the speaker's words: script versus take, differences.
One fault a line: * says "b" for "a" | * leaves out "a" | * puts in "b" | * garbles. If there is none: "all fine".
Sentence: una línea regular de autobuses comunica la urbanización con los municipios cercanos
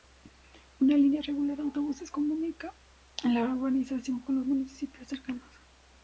all fine